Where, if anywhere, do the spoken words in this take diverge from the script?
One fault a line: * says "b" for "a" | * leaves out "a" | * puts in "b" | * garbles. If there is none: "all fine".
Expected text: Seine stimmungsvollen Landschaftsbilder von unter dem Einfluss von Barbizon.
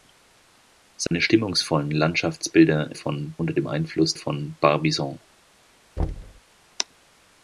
all fine